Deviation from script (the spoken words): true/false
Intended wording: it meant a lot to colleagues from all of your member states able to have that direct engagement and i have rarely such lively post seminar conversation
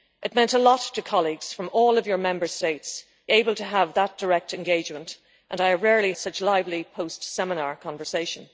false